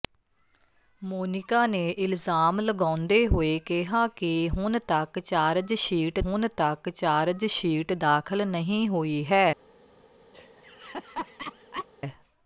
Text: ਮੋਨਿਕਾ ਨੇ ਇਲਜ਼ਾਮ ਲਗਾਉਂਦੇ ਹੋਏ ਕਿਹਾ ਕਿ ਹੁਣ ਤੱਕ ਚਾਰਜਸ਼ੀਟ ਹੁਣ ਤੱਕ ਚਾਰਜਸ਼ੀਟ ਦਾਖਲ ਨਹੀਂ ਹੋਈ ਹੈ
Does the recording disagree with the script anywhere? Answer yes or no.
no